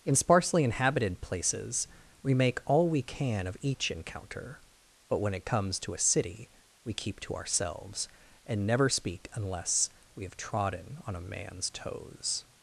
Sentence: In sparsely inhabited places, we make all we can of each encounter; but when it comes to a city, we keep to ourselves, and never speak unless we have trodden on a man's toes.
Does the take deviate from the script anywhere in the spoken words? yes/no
no